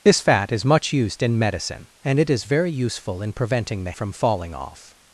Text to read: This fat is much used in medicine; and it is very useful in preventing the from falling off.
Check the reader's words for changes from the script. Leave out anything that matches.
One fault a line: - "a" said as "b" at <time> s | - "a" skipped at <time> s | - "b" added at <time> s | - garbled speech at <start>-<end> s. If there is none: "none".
none